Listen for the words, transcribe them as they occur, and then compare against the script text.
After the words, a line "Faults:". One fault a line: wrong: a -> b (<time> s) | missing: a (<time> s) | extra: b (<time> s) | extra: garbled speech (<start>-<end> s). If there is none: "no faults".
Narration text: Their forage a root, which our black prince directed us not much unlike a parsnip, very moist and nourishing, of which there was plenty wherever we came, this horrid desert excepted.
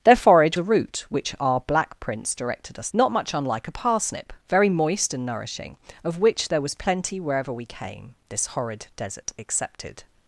Their forage a root, which our black prince directed us not much unlike a parsnip, very moist and nourishing, of which there was plenty wherever we came, this horrid desert excepted.
Faults:
no faults